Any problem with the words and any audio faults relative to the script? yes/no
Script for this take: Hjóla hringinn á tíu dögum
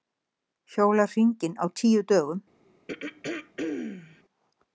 yes